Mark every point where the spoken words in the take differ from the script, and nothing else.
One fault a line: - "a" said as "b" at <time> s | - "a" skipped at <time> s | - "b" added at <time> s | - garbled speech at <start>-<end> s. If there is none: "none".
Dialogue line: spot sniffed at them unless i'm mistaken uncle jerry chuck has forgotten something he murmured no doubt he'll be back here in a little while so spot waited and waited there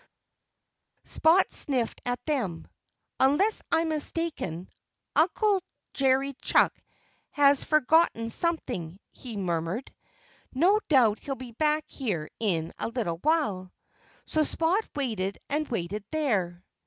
none